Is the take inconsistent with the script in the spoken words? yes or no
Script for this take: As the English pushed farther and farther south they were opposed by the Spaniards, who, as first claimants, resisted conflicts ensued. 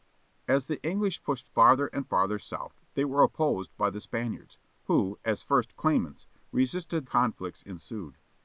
no